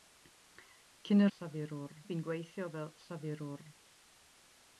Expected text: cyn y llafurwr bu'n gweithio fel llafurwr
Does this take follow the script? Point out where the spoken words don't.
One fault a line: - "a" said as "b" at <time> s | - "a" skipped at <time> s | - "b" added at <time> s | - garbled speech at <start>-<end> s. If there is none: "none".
none